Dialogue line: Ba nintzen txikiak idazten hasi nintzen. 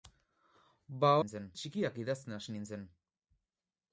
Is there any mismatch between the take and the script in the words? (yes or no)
no